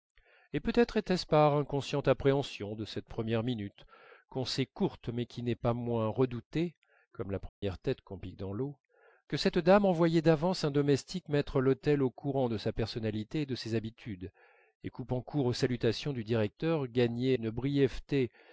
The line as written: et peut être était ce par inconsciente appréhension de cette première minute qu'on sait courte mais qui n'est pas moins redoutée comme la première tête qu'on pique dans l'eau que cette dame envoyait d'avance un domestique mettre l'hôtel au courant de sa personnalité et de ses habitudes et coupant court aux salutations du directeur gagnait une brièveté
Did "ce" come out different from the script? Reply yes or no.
no